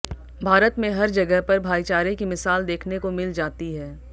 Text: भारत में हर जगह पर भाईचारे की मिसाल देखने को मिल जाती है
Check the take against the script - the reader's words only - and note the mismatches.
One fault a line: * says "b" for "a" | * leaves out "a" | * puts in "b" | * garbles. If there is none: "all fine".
all fine